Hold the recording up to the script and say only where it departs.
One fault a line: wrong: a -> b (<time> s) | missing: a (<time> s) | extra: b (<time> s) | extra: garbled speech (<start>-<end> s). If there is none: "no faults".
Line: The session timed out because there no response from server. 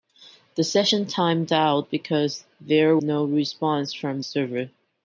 no faults